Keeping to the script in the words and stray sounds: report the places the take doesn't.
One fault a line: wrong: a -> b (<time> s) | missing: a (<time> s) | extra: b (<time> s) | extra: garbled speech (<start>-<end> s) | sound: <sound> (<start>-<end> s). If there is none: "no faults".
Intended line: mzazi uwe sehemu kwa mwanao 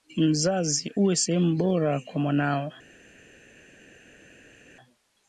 extra: bora (1.6 s)